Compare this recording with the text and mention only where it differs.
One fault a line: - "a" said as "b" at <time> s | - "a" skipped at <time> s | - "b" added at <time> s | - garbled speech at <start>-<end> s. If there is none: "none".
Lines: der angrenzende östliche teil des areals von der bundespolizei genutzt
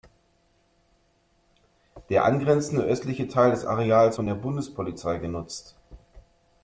none